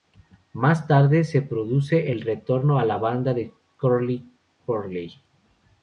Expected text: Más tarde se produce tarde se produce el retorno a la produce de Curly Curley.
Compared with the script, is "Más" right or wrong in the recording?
right